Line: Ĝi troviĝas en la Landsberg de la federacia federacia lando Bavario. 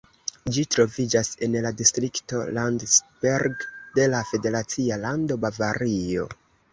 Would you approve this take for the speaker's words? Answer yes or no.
no